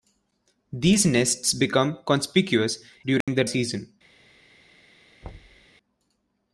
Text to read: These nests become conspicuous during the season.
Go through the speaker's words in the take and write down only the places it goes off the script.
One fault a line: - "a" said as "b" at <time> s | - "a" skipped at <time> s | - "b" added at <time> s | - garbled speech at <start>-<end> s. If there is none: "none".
none